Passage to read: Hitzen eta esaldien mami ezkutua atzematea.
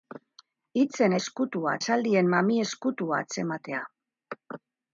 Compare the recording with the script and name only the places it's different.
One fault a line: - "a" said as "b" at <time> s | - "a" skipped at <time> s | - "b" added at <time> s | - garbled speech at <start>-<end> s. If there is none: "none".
- "eta" said as "ezkutua" at 1.2 s